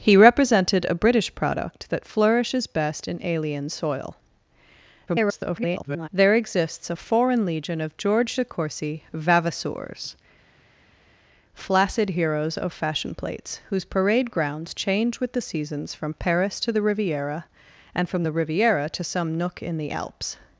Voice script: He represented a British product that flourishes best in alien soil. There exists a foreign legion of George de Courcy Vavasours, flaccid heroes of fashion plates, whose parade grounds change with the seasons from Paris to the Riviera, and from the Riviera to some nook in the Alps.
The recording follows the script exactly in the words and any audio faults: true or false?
false